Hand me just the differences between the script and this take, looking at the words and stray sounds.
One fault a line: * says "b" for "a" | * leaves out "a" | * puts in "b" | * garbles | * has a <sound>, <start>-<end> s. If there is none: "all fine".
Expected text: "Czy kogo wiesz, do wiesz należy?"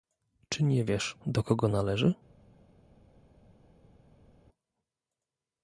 * says "nie" for "kogo"
* says "kogo" for "wiesz"